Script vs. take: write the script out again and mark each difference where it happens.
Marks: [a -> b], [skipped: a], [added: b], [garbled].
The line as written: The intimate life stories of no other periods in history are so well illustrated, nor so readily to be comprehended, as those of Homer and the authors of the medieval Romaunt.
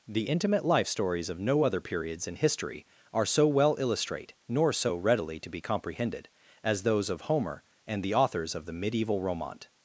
The intimate life stories of no other periods in history are so well [illustrated, -> illustrate] nor so readily to be comprehended, as those of Homer and the authors of the medieval Romaunt.